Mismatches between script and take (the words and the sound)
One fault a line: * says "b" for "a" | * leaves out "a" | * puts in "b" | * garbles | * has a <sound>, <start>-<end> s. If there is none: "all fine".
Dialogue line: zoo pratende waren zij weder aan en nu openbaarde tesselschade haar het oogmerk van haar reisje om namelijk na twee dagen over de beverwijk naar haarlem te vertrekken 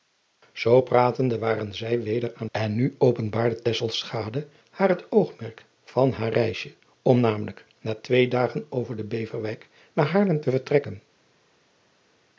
all fine